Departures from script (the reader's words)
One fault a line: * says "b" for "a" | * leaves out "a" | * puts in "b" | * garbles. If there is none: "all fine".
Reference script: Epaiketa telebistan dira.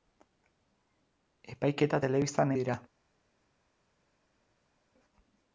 all fine